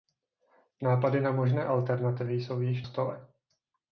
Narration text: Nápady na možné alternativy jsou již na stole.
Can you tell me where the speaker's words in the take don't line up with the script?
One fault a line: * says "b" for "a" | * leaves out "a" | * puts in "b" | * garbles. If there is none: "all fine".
* leaves out "na"